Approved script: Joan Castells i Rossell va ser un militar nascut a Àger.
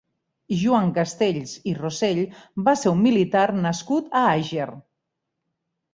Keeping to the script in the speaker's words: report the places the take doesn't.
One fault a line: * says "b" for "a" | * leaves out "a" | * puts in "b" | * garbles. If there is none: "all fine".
all fine